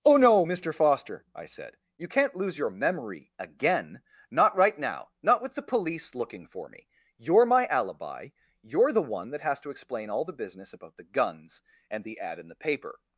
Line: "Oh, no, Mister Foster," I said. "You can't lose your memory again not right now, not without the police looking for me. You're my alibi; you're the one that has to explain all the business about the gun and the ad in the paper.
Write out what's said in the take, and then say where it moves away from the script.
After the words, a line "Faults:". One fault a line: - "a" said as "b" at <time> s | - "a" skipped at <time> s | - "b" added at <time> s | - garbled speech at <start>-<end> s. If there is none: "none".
"Oh, no, Mister Foster," I said. "You can't lose your memory again not right now, not with the police looking for me. You're my alibi; you're the one that has to explain all the business about the guns and the ad in the paper.
Faults:
- "without" said as "with" at 5.4 s
- "gun" said as "guns" at 11.0 s